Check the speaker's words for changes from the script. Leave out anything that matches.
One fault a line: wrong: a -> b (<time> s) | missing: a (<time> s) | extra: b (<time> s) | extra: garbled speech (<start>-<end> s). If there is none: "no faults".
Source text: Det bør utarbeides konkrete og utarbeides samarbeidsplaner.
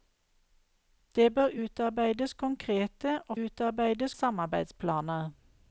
no faults